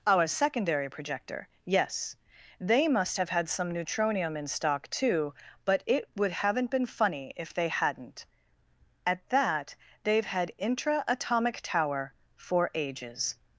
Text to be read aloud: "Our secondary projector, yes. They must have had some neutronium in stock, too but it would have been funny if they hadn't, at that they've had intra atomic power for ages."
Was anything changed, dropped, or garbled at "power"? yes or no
yes